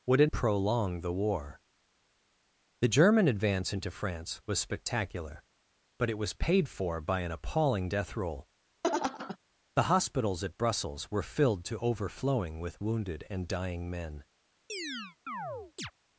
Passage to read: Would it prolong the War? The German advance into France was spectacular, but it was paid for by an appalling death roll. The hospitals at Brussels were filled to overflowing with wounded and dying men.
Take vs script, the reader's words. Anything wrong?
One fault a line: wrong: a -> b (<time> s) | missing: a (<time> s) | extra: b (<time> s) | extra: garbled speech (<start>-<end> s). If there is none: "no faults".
no faults